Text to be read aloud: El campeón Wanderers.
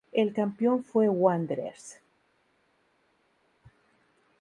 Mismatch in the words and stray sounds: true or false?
true